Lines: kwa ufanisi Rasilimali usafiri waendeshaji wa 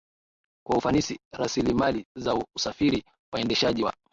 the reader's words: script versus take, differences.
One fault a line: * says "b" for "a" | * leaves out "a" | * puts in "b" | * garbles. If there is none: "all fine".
* puts in "za"